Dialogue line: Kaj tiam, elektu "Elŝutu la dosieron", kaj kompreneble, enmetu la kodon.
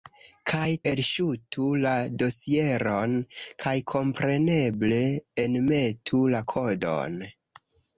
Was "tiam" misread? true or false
true